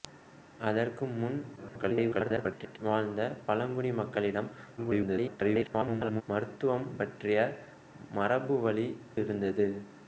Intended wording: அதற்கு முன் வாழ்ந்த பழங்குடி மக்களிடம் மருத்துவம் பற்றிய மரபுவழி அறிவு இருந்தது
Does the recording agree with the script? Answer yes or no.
no